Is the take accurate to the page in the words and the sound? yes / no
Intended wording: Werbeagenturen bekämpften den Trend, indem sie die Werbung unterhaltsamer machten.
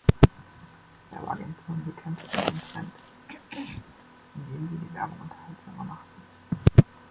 no